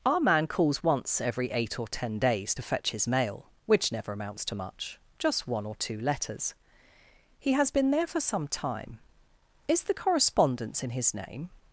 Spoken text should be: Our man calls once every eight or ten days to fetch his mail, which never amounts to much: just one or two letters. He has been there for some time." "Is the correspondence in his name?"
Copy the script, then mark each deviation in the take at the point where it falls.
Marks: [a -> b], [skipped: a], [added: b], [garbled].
Our man calls once every eight or ten days to fetch his mail, which never amounts to much: just one or two letters. He has been there for some time." "Is the correspondence in his name?"